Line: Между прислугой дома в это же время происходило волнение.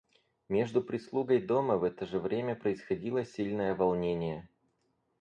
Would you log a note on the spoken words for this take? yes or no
yes